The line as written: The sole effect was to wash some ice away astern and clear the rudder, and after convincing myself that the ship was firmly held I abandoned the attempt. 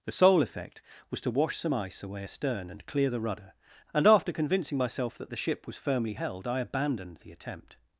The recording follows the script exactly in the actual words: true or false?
true